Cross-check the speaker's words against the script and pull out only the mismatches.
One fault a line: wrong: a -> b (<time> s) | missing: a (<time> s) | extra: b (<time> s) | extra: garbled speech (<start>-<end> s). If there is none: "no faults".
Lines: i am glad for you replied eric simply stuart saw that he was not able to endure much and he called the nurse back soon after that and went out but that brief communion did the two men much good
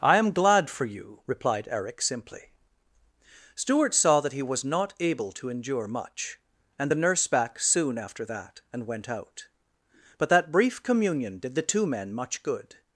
missing: he called (6.9 s)